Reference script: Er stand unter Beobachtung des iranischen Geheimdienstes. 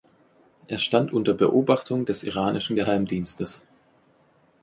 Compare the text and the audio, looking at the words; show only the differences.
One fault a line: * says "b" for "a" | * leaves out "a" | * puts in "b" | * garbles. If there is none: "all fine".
all fine